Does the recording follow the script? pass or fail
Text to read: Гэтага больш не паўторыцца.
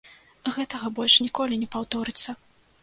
fail